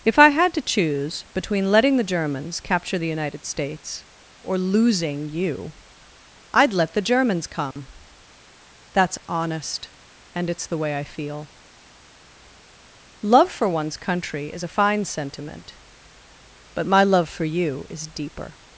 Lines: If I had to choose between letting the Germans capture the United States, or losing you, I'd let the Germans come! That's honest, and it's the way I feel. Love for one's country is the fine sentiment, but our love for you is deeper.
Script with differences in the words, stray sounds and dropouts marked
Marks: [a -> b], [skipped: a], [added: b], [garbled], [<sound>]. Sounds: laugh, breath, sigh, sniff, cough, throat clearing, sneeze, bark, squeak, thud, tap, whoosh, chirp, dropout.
If I had to choose between letting the Germans capture the United States, or losing you, I'd let the Germans come! [dropout] That's honest, and it's the way I feel. Love for one's country is [the -> a] fine sentiment, but [our -> my] love for you is deeper.